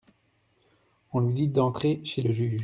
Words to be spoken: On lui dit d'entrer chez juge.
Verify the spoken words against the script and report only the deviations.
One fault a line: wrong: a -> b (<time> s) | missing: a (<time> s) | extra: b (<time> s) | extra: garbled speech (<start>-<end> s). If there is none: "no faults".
extra: le (2.2 s)